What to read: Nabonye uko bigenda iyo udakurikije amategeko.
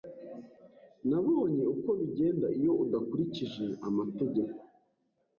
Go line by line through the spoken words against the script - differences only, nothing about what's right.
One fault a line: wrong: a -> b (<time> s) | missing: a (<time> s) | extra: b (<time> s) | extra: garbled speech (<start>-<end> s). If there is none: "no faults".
no faults